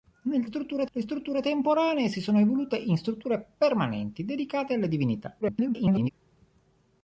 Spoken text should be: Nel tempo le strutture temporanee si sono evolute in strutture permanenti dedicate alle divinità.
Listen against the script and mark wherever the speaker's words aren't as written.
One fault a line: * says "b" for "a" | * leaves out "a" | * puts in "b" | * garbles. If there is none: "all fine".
* says "strutture" for "tempo"
* garbles